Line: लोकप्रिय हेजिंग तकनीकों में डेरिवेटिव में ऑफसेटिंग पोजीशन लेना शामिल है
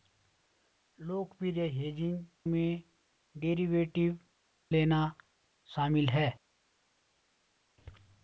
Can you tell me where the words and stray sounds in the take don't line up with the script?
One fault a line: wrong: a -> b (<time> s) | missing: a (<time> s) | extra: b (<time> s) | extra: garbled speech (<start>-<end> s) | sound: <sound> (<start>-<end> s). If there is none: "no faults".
missing: तकनीकों (2.2 s)
missing: में ऑफसेटिंग पोजीशन (4.2 s)